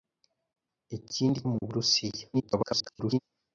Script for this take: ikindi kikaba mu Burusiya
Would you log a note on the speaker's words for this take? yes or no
yes